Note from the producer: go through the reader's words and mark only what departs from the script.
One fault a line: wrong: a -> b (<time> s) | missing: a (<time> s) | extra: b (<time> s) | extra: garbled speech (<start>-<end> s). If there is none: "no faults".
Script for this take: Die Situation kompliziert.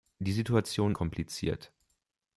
no faults